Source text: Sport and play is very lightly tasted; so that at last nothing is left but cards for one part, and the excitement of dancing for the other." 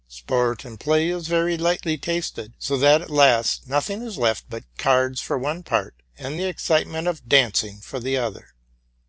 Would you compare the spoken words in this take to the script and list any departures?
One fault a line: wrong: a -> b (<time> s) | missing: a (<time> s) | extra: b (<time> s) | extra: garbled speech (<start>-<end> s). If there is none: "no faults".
no faults